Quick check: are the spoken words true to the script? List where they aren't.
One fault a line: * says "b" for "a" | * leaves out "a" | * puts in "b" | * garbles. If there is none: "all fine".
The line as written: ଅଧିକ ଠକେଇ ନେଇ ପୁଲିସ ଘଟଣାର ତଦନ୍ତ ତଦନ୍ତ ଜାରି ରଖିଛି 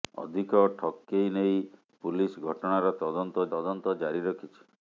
all fine